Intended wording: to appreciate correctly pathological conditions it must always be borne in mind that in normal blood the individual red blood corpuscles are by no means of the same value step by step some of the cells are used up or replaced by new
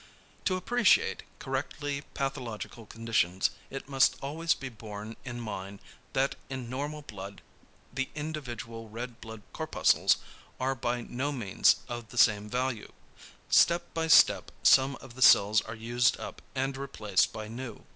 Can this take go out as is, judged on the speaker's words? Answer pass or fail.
fail